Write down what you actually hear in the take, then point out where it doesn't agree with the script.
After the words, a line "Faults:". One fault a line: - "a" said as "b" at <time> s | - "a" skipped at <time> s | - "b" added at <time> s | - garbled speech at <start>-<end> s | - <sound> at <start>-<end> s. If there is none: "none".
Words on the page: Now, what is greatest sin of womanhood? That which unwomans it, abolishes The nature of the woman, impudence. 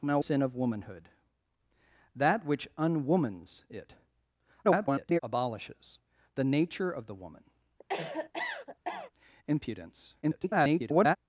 Now, sin of womanhood? That which unwomans it, [garbled] abolishes The nature of the woman, impudence. [garbled]
Faults:
- "what is greatest" skipped at 0.2 s
- garbled speech at 4.6-5.2 s
- cough at 7.8-9.1 s
- garbled speech at 10.2-11.2 s